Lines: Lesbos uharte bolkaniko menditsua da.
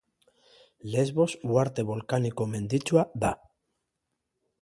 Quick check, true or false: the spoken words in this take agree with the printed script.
true